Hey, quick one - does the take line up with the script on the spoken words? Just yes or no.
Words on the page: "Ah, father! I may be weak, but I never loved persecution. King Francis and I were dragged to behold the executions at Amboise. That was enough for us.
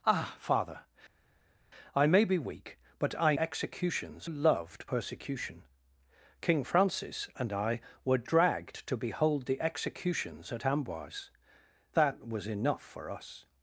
no